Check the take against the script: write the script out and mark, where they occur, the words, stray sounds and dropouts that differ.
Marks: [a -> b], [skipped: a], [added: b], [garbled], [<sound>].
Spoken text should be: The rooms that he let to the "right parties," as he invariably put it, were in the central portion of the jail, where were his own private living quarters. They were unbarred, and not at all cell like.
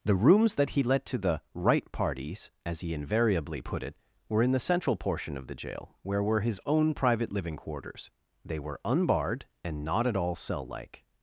The rooms that he let to the "right parties," as he invariably put it, were in the central portion of the jail, where were his own private living quarters. They were unbarred, and not at all cell like.